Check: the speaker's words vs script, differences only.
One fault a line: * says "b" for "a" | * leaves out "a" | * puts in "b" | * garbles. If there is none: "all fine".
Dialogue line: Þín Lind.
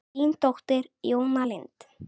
* puts in "dóttir Jóna"